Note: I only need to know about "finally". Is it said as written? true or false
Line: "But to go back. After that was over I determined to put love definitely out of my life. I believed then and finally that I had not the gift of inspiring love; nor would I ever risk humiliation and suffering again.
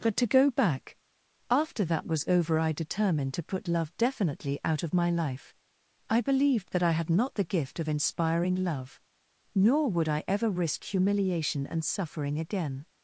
false